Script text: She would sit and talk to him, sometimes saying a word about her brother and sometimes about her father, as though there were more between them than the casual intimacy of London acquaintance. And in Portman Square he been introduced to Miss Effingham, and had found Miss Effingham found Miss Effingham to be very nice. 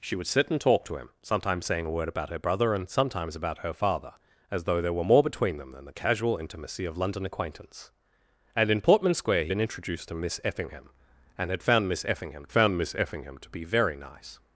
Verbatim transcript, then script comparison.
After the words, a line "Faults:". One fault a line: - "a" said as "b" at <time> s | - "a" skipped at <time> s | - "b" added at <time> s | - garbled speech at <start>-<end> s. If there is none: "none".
She would sit and talk to him, sometimes saying a word about her brother and sometimes about her father, as though there were more between them than the casual intimacy of London acquaintance. And in Portman Square he been introduced to Miss Effingham, and had found Miss Effingham found Miss Effingham to be very nice.
Faults:
none